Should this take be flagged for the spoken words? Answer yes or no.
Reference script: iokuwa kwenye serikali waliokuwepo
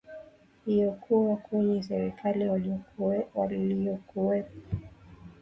no